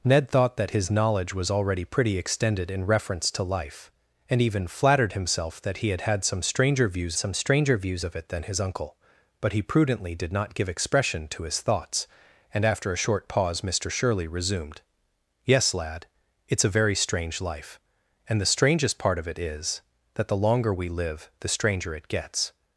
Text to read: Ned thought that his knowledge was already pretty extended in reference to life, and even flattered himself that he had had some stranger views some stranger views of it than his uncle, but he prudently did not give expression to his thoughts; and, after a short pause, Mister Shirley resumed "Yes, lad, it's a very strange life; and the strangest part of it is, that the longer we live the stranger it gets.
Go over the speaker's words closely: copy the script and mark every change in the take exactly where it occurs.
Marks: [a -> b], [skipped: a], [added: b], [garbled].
Ned thought that his knowledge was already pretty extended in reference to life, and even flattered himself that he had had some stranger views some stranger views of it than his uncle, but he prudently did not give expression to his thoughts; and, after a short pause, Mister Shirley resumed "Yes, lad, it's a very strange life; and the strangest part of it is, that the longer we live the stranger it gets.